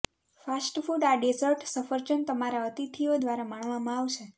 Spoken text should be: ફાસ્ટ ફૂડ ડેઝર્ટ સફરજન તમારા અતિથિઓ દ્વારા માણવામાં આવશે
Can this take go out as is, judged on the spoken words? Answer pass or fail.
fail